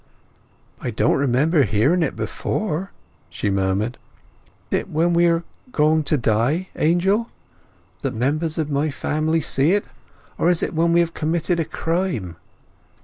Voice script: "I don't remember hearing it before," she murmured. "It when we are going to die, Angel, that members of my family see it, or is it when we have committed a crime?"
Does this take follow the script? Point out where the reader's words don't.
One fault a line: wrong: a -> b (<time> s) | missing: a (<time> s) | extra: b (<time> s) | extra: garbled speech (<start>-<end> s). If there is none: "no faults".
no faults